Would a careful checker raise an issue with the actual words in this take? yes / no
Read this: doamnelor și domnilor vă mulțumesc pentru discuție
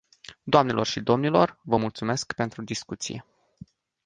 no